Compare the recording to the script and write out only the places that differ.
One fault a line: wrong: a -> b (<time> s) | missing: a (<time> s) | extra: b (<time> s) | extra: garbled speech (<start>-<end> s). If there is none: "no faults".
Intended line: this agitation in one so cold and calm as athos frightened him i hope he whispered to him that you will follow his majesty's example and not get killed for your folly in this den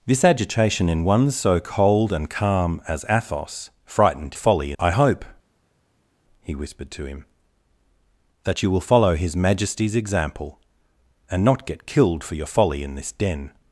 wrong: him -> folly (4.3 s)